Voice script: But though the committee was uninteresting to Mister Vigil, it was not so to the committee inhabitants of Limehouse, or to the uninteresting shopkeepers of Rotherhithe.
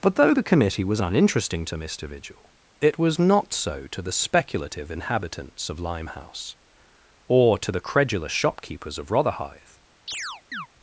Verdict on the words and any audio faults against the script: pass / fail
fail